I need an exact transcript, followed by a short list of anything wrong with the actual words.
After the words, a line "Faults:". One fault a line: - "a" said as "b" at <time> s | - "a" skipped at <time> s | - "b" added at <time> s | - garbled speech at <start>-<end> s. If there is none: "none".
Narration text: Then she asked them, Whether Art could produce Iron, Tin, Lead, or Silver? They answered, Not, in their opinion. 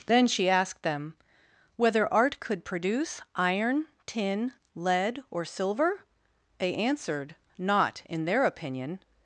Then she asked them, Whether Art could produce Iron, Tin, Lead, or Silver? They answered, Not, in their opinion.
Faults:
none